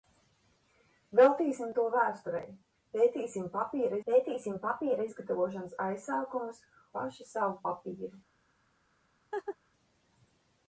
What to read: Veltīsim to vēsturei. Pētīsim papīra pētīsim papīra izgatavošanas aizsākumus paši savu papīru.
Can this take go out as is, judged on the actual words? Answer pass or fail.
pass